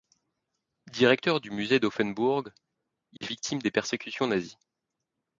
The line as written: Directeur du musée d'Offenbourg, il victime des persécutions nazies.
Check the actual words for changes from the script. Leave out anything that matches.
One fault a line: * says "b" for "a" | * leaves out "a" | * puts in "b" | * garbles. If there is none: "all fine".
all fine